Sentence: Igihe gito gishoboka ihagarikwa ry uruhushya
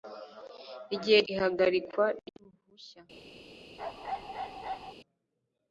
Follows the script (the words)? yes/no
no